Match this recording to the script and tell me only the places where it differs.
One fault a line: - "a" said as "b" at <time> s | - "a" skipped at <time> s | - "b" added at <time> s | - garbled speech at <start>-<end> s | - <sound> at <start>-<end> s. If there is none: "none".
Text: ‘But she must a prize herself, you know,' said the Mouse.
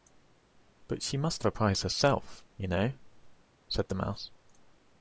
none